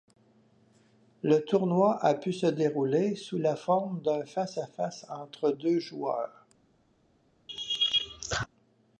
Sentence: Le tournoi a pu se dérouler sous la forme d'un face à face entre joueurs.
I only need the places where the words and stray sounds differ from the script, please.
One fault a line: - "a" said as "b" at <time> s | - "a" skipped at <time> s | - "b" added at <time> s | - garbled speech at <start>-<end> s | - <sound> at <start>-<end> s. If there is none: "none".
- "deux" added at 5.5 s
- laugh at 7.5-8.5 s